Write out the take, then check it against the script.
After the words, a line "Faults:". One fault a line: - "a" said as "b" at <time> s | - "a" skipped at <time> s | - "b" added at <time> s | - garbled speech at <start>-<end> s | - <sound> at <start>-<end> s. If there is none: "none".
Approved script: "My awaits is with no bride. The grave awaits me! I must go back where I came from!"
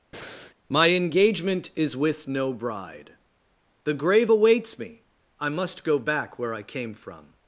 "My engagement is with no bride. The grave awaits me! I must go back where I came from!"
Faults:
- breath at 0.1-0.5 s
- "awaits" said as "engagement" at 0.9 s